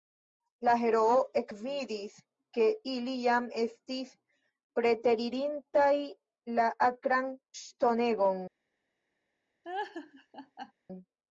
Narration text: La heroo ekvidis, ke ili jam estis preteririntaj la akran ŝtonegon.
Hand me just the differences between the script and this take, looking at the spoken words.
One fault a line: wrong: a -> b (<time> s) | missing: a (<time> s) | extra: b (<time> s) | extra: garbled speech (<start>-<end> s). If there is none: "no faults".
no faults